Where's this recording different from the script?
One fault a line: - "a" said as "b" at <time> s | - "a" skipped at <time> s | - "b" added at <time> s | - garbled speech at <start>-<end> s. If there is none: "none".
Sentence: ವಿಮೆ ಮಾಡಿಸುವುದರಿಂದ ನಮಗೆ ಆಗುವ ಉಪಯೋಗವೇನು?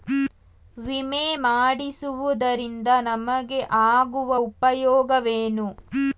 none